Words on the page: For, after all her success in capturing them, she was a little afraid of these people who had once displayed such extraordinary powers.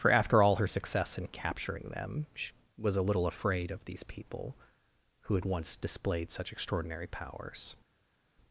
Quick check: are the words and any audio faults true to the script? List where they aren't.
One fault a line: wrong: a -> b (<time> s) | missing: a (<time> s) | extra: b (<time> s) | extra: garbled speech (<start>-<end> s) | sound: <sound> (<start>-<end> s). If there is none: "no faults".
no faults